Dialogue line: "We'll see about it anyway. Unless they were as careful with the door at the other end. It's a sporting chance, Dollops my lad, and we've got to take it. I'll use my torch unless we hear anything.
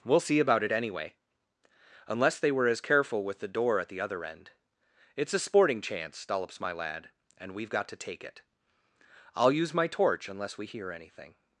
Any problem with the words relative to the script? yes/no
no